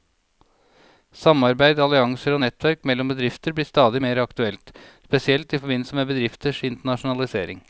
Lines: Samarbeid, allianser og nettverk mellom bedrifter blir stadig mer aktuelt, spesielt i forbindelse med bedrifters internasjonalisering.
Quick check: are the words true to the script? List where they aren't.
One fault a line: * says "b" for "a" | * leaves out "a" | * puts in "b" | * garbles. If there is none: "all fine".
all fine